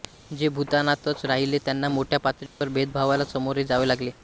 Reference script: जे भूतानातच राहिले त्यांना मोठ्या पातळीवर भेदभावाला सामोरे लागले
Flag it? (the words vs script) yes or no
yes